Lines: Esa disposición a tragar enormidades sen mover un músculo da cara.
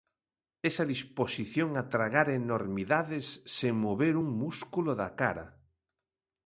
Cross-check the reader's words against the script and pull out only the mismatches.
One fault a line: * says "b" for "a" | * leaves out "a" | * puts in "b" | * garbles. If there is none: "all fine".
all fine